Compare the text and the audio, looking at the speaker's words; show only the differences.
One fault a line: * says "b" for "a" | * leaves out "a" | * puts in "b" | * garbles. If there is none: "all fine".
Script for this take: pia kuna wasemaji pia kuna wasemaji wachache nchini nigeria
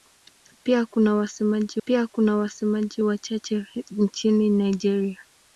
all fine